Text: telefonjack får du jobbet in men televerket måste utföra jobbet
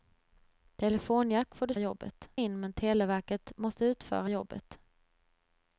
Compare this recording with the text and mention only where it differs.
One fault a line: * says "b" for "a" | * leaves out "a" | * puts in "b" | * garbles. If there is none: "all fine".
all fine